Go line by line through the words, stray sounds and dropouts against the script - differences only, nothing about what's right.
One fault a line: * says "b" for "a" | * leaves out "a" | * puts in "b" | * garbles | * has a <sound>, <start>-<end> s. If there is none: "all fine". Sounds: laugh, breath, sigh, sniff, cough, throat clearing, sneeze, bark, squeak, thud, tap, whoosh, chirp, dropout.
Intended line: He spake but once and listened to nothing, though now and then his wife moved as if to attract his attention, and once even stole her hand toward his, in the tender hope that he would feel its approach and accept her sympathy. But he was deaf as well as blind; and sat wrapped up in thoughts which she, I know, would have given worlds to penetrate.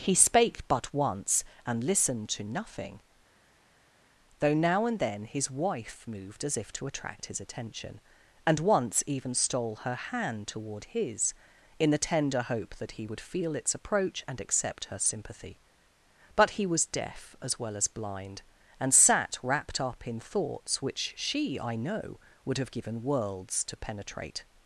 all fine